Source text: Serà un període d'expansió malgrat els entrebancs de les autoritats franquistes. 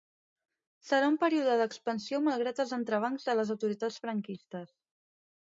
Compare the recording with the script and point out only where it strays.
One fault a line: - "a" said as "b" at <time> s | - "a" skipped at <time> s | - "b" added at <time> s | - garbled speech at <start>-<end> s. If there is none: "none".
none